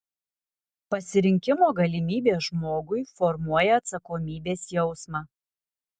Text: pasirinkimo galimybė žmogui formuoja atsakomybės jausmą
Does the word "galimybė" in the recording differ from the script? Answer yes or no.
no